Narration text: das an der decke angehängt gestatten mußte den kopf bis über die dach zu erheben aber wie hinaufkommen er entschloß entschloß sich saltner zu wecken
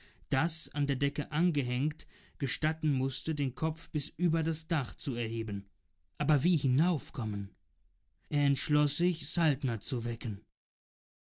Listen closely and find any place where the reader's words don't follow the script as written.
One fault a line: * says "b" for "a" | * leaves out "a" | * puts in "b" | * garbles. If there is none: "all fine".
* says "das" for "die"
* leaves out "entschloß"